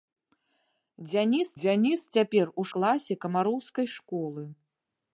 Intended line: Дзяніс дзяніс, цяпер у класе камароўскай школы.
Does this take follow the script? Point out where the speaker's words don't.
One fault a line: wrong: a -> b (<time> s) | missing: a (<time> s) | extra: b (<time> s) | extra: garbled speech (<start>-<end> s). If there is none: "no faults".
no faults